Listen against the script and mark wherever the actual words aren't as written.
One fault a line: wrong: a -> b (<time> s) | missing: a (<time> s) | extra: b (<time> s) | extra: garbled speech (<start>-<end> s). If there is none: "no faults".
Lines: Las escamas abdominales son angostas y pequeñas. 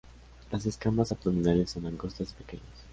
no faults